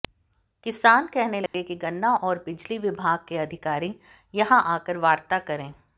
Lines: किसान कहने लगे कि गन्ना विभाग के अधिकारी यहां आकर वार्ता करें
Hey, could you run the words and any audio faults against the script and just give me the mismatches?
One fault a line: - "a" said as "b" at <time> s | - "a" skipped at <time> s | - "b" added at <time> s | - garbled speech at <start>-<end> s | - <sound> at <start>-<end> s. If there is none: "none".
- dropout at 1.5-1.5 s
- "और बिजली" added at 2.1 s